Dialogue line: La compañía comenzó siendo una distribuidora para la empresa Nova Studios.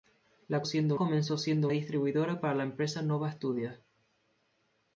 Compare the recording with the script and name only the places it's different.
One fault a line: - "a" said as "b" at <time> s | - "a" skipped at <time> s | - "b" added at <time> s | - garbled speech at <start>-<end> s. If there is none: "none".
- "compañía" said as "siendo" at 0.6 s
- "una" skipped at 1.7 s